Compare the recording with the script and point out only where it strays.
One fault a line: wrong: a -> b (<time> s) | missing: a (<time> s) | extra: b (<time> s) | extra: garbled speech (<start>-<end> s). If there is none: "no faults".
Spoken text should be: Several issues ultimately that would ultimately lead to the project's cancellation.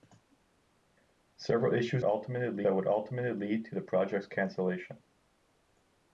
no faults